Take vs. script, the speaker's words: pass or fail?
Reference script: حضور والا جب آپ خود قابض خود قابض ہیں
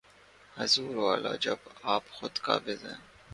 fail